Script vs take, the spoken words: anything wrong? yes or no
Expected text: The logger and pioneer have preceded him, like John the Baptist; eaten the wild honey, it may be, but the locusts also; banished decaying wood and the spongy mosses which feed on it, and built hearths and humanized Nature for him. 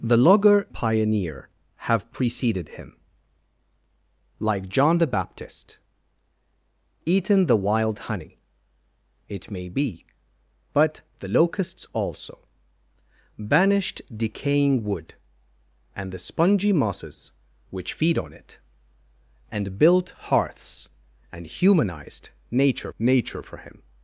yes